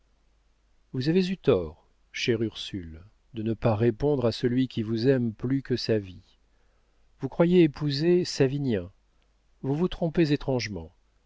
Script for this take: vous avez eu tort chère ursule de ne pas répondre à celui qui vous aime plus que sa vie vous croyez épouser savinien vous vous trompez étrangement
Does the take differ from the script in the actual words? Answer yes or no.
no